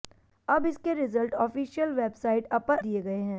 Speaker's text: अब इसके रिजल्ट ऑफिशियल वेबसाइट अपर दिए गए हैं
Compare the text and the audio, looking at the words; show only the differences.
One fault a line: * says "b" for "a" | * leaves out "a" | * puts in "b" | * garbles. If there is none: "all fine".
all fine